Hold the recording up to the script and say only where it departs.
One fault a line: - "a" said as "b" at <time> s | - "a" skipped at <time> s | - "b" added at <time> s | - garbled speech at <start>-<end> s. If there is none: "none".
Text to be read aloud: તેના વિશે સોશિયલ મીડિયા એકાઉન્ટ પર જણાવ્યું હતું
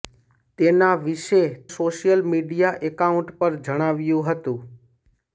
none